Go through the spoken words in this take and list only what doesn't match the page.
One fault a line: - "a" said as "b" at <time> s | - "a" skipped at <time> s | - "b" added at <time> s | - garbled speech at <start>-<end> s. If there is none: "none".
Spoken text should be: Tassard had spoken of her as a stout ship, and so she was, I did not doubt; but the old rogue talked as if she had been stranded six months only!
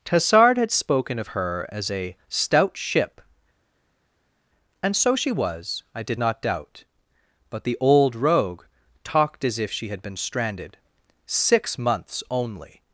none